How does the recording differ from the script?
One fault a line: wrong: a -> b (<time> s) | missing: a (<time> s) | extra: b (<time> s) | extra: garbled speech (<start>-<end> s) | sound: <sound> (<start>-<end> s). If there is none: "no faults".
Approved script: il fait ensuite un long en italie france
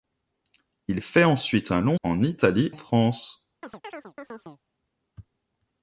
sound: chirp (3.6-4.6 s)